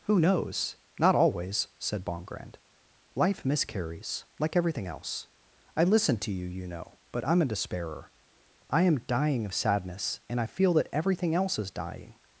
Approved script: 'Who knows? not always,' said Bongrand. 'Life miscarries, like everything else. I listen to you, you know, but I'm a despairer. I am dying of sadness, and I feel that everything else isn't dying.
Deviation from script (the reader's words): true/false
true